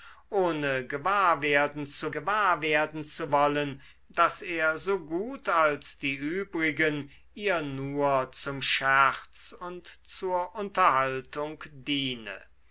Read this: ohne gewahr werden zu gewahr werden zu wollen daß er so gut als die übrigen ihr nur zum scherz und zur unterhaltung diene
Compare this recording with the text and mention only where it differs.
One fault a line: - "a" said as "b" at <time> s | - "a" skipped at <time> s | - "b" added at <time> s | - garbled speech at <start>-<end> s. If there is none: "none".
none